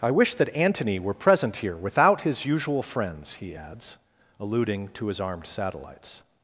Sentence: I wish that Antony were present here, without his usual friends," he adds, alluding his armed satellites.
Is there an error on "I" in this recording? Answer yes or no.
no